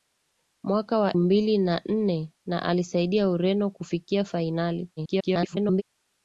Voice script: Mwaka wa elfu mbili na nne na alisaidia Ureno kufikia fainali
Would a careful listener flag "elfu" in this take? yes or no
yes